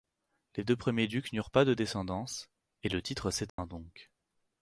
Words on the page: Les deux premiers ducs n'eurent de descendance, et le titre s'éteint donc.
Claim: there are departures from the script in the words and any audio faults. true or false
true